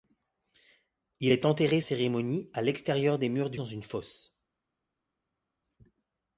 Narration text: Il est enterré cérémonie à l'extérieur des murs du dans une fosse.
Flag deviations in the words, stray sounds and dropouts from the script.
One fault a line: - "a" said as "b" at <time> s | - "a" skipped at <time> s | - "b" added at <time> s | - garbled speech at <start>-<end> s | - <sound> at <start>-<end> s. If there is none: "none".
none